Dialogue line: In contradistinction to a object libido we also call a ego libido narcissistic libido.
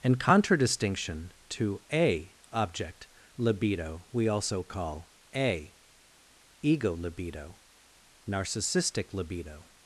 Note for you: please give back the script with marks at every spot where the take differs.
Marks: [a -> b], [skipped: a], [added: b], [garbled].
In contradistinction to a object libido we also call a ego libido narcissistic libido.